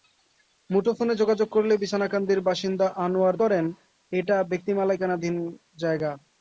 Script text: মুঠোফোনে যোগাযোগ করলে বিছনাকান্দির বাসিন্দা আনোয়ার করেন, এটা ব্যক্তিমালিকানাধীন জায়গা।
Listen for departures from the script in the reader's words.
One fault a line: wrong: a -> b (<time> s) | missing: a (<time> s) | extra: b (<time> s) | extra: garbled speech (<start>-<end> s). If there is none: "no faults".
no faults